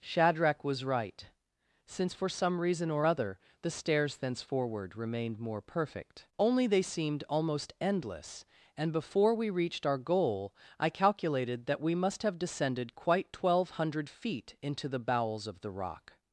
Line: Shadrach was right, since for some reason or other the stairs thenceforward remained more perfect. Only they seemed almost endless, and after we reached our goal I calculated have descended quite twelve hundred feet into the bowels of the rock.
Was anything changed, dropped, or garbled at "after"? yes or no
yes